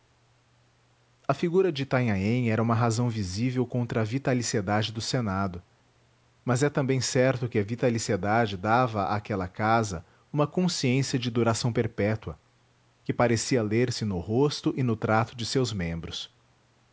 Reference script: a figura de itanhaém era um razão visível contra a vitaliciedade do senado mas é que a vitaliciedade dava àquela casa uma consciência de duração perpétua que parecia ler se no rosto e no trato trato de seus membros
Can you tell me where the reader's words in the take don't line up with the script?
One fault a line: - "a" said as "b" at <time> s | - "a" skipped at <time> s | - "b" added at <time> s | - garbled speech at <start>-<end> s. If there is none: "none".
- "um" said as "uma" at 2.6 s
- "também certo" added at 6.7 s
- "trato" skipped at 15.3 s